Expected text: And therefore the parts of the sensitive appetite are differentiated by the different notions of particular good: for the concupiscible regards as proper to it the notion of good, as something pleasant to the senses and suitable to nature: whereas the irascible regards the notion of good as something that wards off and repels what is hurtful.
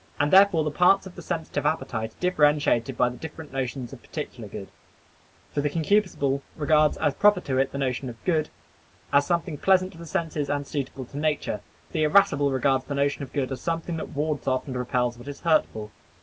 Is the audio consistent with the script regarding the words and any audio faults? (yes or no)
no